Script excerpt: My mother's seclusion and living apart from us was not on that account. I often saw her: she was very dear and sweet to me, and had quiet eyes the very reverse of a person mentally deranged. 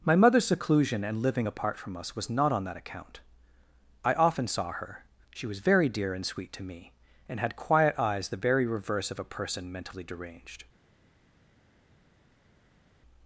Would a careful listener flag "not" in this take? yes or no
no